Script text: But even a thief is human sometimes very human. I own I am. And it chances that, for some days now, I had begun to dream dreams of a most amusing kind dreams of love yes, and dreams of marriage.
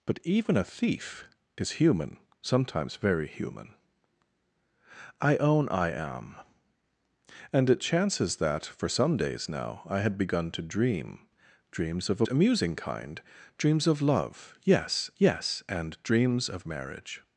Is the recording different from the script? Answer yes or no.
yes